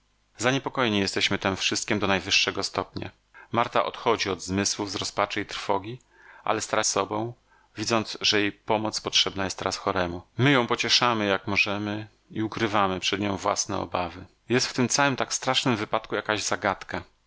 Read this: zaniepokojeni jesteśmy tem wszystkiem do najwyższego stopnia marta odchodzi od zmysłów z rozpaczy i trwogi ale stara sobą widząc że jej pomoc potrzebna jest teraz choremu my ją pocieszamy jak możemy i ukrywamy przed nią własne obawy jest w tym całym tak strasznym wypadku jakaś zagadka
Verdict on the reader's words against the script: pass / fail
pass